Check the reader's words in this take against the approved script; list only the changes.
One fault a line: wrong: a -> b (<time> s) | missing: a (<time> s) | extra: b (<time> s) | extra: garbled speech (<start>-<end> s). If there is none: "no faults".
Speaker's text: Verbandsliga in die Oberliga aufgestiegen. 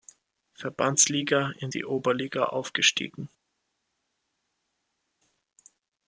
no faults